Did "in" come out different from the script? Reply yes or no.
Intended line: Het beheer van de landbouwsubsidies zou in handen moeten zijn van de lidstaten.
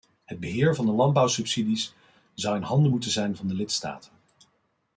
no